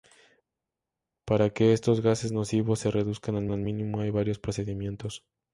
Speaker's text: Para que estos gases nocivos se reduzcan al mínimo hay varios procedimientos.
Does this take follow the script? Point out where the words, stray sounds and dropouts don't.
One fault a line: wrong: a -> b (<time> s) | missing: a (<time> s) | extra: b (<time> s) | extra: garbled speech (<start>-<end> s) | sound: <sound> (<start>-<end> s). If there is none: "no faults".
extra: al (3.5 s)